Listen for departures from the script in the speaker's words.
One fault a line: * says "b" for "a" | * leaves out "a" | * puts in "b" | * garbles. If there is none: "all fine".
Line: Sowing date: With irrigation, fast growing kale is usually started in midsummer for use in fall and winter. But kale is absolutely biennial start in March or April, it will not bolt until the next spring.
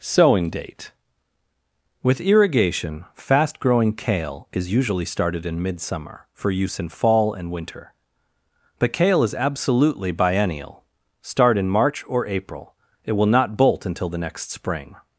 all fine